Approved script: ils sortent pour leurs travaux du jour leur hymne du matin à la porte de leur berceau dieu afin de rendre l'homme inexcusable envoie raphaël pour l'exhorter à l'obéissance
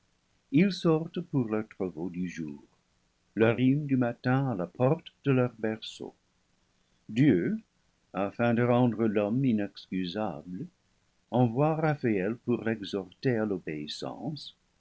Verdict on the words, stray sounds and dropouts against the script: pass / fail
pass